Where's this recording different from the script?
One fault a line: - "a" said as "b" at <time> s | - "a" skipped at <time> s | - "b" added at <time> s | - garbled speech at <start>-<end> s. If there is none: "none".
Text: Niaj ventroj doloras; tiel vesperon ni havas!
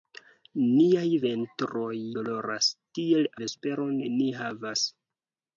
none